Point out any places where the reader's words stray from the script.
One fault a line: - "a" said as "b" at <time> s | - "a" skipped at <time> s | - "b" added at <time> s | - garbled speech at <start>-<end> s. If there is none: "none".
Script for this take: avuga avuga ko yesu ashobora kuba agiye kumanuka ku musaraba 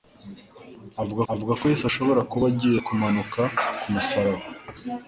none